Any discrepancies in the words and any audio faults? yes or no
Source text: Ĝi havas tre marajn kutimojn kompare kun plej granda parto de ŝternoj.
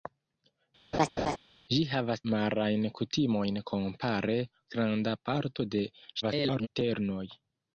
yes